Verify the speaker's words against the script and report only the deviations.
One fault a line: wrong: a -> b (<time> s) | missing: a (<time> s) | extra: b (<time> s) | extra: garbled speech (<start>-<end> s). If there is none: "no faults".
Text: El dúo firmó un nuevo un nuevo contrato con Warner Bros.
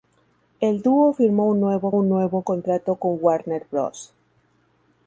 no faults